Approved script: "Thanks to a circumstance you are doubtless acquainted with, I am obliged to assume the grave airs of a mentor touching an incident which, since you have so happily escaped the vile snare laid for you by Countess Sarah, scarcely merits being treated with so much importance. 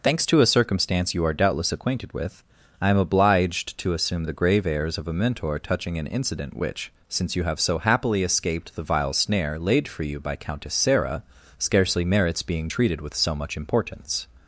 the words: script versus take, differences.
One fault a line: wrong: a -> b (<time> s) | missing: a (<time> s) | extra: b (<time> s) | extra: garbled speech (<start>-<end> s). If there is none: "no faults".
no faults